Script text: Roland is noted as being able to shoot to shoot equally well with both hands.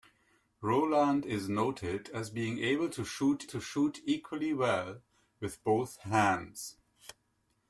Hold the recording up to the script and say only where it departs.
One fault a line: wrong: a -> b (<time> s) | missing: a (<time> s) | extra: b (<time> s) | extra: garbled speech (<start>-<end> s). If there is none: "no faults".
no faults